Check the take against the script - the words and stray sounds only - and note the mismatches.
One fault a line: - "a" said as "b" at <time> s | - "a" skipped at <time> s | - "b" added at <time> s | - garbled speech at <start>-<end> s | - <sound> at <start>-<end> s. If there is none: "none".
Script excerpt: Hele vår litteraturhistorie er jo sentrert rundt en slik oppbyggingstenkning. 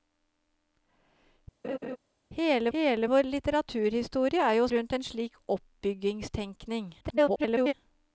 - laugh at 1.6-2.0 s
- "hele" added at 2.7 s
- "sentrert" skipped at 4.7 s
- garbled speech at 7.0-7.7 s